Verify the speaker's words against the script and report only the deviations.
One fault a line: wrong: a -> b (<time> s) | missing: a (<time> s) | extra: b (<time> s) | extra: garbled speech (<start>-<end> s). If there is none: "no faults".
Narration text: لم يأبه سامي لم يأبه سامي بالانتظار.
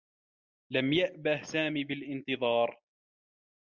missing: لم يأبه سامي (1.8 s)